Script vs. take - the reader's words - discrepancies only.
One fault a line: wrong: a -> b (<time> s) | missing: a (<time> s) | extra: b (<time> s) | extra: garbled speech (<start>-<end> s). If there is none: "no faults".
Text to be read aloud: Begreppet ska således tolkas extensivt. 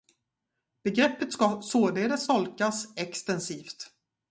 no faults